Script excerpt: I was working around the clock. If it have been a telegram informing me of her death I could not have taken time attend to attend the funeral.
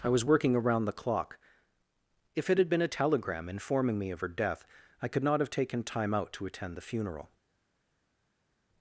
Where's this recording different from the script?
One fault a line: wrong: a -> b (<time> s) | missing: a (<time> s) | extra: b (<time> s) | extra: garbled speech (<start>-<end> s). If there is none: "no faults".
wrong: have -> had (2.6 s)
wrong: attend -> out (6.1 s)